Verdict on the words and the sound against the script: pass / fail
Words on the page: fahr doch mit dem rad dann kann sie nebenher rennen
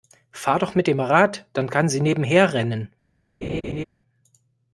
fail